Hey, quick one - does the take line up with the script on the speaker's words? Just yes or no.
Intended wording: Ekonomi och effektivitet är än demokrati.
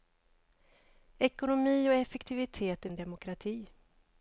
yes